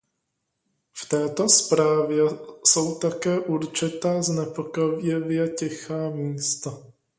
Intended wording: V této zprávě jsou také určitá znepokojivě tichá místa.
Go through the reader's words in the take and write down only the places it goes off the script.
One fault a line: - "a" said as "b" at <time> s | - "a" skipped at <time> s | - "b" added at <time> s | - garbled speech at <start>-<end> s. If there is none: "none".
none